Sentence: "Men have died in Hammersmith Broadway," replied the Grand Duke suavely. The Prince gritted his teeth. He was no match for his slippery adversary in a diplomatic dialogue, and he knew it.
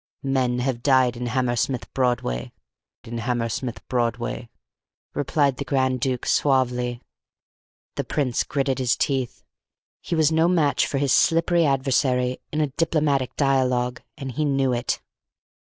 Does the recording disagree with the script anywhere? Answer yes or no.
yes